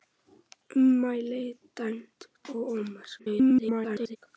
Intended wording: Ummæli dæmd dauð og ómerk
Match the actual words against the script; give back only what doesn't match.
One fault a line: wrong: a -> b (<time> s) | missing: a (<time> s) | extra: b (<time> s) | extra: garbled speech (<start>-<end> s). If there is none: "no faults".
missing: dauð (2.2 s)
extra: garbled speech (3.2-4.2 s)